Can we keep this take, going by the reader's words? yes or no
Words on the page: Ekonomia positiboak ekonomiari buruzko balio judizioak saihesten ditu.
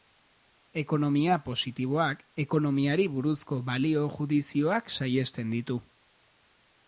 yes